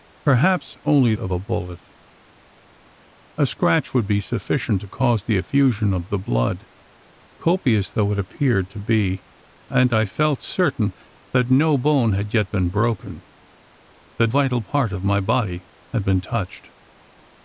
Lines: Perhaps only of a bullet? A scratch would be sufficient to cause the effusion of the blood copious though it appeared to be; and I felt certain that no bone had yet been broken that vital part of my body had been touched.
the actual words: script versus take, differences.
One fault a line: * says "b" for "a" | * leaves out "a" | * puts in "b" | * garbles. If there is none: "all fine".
all fine